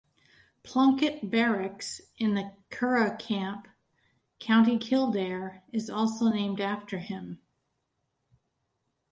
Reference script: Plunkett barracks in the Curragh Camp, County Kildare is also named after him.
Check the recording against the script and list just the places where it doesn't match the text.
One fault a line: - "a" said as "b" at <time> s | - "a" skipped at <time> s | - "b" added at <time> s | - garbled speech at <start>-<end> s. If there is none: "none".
none